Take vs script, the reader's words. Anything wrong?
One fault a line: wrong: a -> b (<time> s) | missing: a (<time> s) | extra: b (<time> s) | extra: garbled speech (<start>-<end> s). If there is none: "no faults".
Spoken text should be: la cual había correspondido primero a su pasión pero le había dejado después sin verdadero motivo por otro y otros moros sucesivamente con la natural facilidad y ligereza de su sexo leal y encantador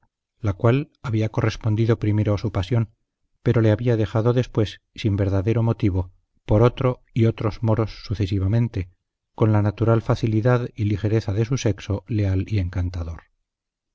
no faults